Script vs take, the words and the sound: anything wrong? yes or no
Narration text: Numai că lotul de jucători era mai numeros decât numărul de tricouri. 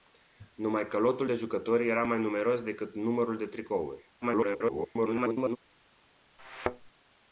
yes